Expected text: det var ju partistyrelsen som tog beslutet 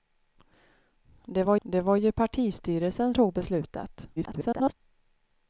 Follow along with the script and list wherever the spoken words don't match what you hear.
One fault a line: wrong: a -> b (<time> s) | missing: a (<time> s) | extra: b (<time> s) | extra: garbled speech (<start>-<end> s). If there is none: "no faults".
extra: det var (1.6 s)
missing: som (3.1 s)
extra: garbled speech (4.2-4.7 s)